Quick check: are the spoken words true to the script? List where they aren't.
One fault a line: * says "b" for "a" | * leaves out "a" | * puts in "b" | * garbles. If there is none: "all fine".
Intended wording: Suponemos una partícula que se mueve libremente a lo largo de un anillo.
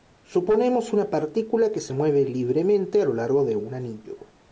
all fine